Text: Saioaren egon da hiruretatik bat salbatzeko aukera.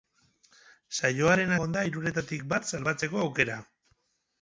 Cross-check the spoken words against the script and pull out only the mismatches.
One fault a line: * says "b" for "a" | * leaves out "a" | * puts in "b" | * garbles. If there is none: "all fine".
all fine